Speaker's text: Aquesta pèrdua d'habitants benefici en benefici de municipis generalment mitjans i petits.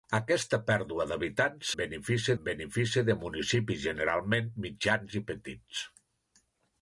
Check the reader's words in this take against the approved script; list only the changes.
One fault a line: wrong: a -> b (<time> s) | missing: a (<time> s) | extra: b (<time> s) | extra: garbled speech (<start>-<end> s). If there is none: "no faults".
no faults